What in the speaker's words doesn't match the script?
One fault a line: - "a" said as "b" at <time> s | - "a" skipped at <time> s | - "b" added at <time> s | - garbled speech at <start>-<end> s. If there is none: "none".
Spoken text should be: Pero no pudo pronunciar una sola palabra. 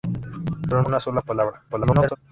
- "no pudo pronunciar" skipped at 0.8 s
- garbled speech at 1.7-2.2 s